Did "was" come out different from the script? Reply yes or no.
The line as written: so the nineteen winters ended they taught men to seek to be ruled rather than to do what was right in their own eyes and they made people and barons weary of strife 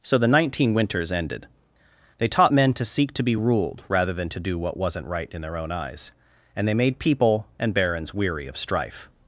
yes